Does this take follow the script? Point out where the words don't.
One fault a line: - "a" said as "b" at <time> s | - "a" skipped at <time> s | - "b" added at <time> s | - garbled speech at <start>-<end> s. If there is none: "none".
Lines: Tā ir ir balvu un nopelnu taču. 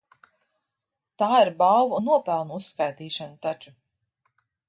- "ir" skipped at 1.5 s
- "uzskaitīšana" added at 2.6 s